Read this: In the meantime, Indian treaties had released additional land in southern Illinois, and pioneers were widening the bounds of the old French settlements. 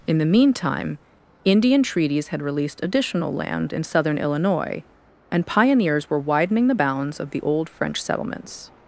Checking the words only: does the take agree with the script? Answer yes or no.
yes